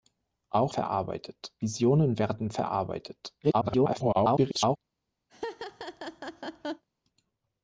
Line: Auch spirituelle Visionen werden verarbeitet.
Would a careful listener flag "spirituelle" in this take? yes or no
yes